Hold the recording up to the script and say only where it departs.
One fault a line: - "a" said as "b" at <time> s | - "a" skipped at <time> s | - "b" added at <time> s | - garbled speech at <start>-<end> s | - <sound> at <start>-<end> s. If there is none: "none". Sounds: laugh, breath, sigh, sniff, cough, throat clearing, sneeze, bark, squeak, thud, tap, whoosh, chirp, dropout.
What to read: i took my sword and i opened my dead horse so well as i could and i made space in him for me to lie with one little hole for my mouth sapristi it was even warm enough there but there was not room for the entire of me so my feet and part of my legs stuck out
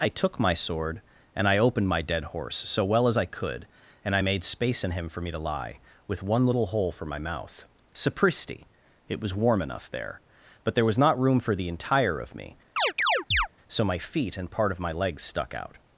- "even" skipped at 9.4 s
- chirp at 12.8-13.5 s